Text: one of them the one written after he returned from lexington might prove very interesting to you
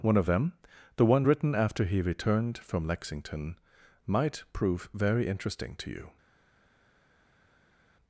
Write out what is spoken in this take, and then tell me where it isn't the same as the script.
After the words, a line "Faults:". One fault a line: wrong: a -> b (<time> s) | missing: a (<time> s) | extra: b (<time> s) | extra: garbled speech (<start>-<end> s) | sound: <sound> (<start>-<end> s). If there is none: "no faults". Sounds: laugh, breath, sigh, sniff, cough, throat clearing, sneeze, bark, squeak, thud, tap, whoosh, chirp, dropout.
one of them the one written after he returned from lexington might prove very interesting to you
Faults:
no faults